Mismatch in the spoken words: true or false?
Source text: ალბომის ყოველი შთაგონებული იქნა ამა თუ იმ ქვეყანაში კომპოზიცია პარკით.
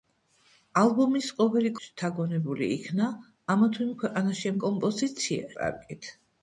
false